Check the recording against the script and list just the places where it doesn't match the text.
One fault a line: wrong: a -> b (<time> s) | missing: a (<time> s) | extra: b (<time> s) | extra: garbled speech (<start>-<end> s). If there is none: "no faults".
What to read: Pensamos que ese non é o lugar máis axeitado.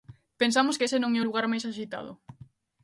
no faults